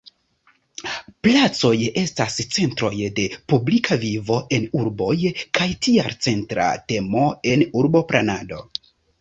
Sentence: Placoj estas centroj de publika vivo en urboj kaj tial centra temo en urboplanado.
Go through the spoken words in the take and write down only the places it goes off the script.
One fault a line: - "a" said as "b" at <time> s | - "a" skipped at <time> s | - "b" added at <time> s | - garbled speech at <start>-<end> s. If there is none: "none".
none